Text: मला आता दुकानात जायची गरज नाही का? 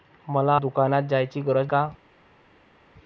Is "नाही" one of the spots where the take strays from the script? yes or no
yes